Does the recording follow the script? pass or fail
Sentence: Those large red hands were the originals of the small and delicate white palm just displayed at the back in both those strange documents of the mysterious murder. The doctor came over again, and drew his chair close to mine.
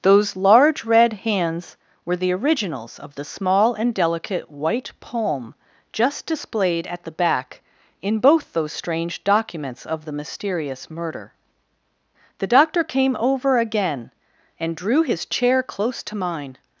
pass